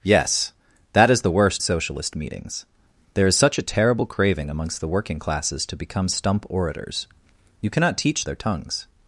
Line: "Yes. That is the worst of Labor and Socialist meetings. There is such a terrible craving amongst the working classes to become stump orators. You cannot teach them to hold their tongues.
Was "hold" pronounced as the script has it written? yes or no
no